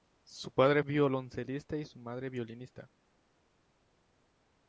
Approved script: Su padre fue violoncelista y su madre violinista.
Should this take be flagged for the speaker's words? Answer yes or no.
yes